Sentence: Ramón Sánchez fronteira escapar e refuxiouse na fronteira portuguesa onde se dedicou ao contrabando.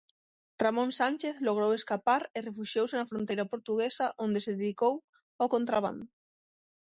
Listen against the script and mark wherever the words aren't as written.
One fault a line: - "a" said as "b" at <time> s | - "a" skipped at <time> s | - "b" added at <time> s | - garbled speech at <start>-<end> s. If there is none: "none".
- "fronteira" said as "logrou" at 1.5 s